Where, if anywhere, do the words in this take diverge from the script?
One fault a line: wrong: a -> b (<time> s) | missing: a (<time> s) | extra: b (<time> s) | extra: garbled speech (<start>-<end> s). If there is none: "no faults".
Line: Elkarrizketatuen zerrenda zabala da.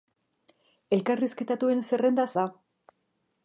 missing: zabala (2.2 s)